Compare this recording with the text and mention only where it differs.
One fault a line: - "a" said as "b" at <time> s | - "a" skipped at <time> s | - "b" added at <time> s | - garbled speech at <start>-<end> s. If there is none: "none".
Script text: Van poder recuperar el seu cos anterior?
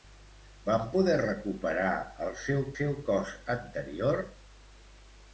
- "seu" added at 2.8 s